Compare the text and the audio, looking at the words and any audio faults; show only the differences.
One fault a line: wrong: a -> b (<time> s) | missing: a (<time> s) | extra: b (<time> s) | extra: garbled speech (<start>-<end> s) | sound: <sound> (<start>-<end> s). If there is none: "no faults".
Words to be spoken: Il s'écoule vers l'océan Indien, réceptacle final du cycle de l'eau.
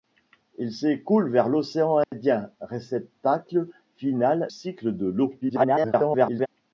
sound: dropout (2.0-2.1 s)
missing: du (4.5 s)
extra: garbled speech (5.4-6.5 s)